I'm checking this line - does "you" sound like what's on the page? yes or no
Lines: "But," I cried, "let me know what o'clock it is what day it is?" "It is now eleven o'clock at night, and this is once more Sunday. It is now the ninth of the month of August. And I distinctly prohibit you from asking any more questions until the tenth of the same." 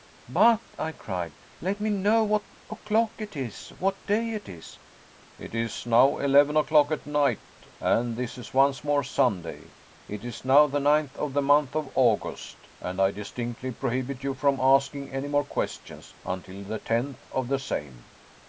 yes